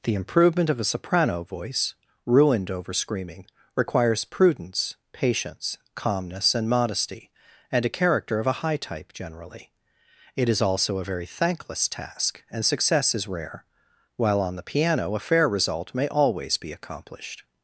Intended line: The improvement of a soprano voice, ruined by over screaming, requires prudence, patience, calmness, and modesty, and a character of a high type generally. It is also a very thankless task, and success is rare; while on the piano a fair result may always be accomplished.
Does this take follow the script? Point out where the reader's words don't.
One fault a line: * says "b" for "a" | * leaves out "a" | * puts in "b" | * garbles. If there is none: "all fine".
* leaves out "by"